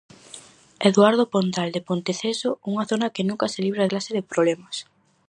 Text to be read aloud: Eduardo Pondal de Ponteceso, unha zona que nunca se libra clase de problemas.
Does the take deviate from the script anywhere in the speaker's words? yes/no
no